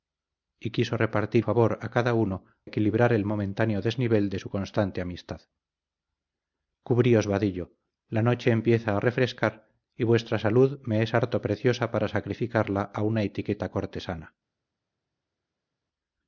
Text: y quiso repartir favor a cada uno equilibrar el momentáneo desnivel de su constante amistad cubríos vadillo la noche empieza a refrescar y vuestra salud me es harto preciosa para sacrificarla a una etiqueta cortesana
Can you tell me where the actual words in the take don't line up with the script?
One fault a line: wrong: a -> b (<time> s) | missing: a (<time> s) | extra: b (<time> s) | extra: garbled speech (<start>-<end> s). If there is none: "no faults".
no faults